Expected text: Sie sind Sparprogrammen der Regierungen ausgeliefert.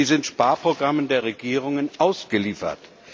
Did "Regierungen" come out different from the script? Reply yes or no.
no